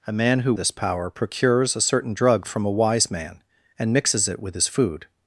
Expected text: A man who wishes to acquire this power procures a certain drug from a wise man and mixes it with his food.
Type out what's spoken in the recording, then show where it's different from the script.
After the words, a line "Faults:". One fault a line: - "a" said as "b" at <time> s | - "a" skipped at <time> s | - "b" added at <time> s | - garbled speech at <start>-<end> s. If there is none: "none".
A man who this power procures a certain drug from a wise man and mixes it with his food.
Faults:
- "wishes to acquire" skipped at 0.5 s